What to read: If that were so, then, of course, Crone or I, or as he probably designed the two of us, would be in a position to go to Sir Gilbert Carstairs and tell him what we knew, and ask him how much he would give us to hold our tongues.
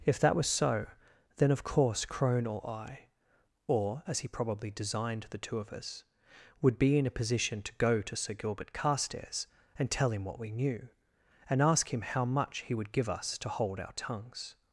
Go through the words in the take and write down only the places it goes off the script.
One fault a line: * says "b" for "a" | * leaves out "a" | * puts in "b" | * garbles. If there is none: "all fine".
* says "was" for "were"